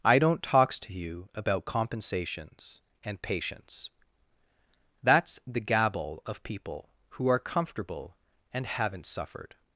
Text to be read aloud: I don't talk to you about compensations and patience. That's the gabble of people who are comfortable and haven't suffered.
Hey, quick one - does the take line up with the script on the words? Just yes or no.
no